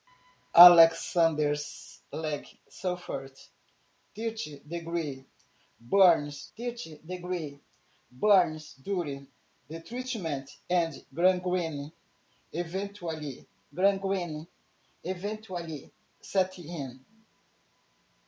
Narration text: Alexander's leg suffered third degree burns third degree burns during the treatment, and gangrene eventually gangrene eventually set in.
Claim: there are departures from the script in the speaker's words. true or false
false